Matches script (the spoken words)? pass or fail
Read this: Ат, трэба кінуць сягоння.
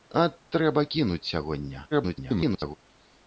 fail